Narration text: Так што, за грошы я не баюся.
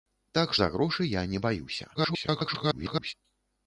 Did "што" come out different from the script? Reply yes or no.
yes